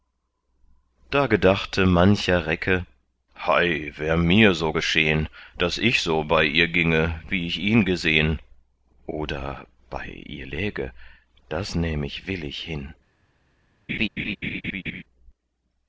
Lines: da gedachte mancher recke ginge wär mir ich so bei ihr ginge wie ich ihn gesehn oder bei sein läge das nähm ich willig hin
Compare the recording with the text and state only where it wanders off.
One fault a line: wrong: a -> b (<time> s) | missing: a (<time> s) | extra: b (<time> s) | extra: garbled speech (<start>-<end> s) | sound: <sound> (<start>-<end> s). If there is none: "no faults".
wrong: ginge -> hei (3.5 s)
extra: so geschehn daß (4.5 s)
wrong: sein -> ihr (10.1 s)
sound: laugh (13.9-15.0 s)